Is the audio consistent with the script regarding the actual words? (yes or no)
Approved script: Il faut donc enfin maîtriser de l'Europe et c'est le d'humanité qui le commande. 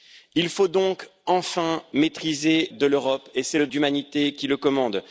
yes